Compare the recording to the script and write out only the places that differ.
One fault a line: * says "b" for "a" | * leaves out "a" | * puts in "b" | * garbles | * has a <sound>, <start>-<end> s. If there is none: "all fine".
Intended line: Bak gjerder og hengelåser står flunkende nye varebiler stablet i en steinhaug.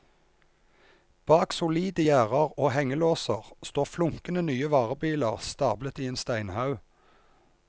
* puts in "solide"